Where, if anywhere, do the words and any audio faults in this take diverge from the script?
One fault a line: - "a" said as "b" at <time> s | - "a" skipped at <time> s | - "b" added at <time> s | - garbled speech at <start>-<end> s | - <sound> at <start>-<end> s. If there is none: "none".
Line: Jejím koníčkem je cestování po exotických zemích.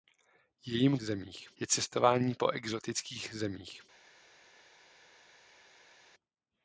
- "koníčkem" said as "zemích" at 1.0 s